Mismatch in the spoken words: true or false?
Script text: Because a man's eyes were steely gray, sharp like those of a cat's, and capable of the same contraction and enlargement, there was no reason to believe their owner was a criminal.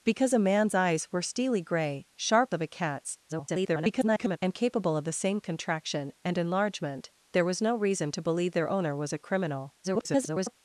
true